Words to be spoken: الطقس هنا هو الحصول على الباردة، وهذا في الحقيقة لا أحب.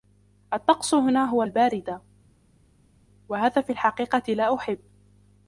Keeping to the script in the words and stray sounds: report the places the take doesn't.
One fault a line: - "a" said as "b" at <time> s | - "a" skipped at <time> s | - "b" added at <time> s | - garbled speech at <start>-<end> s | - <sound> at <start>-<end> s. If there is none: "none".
- "الحصول على" skipped at 1.4 s